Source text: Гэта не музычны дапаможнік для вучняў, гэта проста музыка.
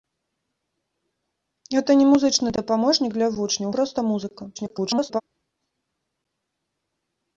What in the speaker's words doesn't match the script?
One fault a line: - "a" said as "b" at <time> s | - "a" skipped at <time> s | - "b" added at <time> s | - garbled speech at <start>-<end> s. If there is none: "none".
- "гэта" skipped at 3.7 s
- garbled speech at 4.6-5.2 s